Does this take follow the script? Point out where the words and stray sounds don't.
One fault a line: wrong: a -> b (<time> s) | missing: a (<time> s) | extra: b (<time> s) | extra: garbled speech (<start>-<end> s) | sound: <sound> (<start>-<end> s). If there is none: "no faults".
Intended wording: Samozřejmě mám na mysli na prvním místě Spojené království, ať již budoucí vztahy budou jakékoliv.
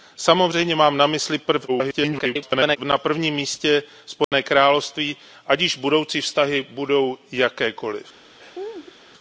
extra: garbled speech (1.7-2.8 s)
sound: dropout (4.2-4.3 s)
sound: laugh (8.4-9.0 s)